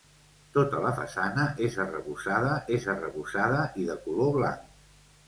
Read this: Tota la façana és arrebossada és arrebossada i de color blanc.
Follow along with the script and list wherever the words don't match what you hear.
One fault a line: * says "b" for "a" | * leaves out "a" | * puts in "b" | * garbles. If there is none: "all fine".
all fine